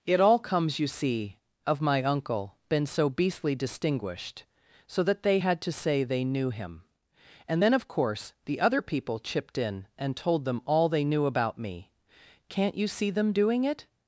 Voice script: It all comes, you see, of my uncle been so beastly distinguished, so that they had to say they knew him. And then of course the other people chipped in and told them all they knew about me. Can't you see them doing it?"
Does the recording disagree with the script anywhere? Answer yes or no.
no